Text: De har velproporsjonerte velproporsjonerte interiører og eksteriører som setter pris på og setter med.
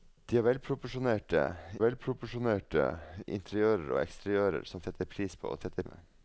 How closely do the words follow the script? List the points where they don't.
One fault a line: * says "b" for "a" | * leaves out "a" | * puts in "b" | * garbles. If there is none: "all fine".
all fine